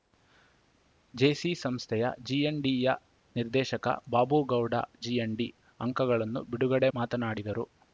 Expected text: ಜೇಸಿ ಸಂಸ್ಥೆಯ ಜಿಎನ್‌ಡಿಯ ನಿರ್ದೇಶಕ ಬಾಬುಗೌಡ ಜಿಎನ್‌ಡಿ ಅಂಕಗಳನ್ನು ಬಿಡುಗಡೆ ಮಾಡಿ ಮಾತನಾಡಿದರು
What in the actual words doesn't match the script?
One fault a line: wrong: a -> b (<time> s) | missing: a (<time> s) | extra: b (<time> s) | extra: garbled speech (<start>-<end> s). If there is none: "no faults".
missing: ಮಾಡಿ (6.9 s)